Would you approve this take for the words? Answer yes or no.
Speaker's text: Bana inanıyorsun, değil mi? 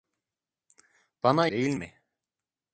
no